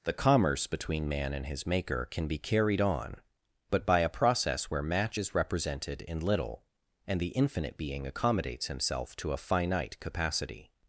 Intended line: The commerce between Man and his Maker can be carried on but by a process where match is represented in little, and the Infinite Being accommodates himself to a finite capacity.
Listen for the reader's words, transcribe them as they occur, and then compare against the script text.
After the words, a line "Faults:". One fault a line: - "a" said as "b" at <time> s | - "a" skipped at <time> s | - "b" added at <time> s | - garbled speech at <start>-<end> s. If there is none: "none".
The commerce between Man and his Maker can be carried on but by a process where match is represented in little, and the Infinite Being accommodates himself to a finite capacity.
Faults:
none